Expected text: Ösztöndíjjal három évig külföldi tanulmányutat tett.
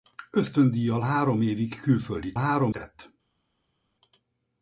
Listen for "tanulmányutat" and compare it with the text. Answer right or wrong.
wrong